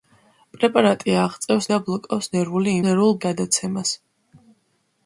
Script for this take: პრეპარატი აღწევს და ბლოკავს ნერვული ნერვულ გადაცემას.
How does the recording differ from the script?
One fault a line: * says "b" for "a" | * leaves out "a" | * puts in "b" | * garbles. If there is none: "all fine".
all fine